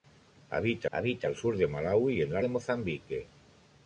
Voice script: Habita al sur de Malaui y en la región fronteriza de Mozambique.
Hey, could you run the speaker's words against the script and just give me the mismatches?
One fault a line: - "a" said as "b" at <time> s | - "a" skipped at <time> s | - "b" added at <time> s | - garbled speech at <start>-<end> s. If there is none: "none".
- "habita" added at 0.9 s
- "región fronteriza" skipped at 2.4 s